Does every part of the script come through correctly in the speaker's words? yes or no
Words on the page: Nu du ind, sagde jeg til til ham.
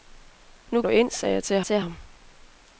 yes